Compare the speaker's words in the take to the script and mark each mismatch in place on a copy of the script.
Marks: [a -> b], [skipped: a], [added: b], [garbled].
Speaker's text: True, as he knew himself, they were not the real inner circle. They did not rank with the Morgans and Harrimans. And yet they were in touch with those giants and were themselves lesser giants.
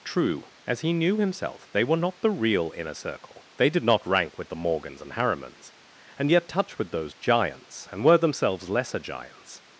True, as he knew himself, they were not the real inner circle. They did not rank with the Morgans and Harrimans. And yet [skipped: they were in] touch with those giants and were themselves lesser giants.